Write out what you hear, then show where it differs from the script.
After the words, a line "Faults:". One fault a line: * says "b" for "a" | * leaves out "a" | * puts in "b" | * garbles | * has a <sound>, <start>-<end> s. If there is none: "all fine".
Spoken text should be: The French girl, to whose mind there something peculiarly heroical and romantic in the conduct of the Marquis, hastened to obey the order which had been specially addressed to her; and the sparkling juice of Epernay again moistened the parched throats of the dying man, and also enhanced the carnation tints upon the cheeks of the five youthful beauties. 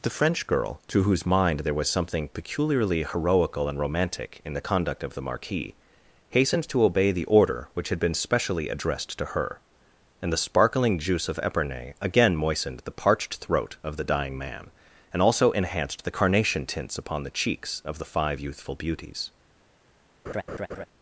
The French girl, to whose mind there was something peculiarly heroical and romantic in the conduct of the Marquis, hastened to obey the order which had been specially addressed to her; and the sparkling juice of Epernay again moistened the parched throat of the dying man, and also enhanced the carnation tints upon the cheeks of the five youthful beauties.
Faults:
* puts in "was"
* says "throat" for "throats"
* has a laugh, 20.3-20.9 s